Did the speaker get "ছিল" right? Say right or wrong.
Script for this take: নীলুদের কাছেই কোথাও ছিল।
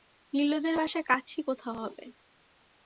wrong